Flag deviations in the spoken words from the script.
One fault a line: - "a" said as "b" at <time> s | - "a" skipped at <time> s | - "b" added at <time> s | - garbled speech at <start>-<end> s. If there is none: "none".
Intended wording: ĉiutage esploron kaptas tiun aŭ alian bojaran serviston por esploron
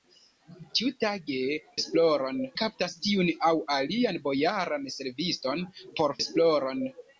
none